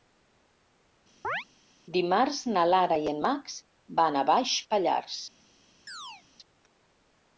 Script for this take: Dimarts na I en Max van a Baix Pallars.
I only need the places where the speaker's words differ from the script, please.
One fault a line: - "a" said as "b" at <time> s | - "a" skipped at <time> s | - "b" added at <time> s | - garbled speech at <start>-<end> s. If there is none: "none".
- "Lara" added at 2.7 s